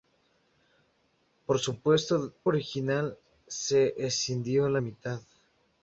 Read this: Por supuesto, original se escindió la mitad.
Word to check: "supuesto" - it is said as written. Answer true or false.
true